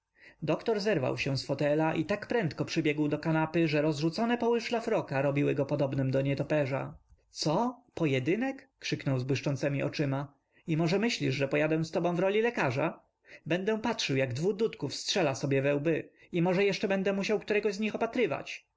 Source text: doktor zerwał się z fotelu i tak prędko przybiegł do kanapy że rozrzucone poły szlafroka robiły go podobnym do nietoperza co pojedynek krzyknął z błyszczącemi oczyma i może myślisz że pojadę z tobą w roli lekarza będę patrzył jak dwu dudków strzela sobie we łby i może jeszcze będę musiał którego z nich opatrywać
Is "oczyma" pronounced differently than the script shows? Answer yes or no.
no